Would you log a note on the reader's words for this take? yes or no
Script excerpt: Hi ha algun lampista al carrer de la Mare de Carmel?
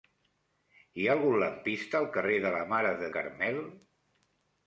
no